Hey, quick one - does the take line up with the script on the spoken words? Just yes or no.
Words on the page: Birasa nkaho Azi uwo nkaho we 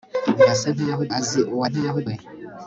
yes